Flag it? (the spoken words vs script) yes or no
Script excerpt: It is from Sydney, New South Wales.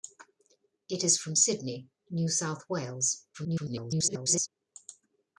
yes